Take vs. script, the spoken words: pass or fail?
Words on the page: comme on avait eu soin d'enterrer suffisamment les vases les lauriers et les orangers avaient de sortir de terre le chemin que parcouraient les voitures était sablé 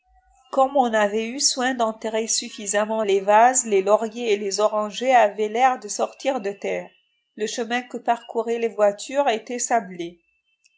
fail